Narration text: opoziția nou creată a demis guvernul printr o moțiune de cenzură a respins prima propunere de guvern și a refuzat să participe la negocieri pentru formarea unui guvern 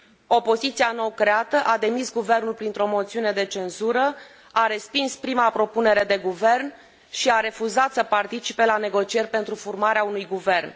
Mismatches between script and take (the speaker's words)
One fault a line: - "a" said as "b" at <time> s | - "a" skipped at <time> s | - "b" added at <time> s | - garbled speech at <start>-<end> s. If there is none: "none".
none